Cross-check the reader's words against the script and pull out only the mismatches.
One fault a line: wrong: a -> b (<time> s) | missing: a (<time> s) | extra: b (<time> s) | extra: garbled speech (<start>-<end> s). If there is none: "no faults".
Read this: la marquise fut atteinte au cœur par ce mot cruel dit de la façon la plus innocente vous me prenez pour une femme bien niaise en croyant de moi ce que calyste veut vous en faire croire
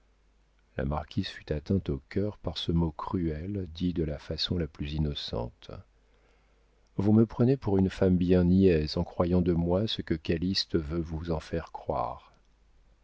no faults